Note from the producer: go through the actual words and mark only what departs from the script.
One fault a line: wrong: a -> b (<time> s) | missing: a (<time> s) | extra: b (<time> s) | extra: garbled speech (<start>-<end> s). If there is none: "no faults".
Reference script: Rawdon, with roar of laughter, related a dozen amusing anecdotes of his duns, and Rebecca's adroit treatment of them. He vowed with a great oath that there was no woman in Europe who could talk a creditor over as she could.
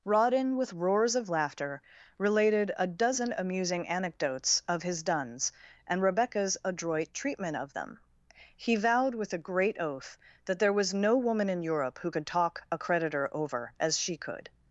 wrong: roar -> roars (0.7 s)